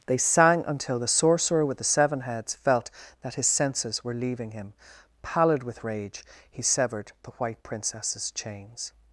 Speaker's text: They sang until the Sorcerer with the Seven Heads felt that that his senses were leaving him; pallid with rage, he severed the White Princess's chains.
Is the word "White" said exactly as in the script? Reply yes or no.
yes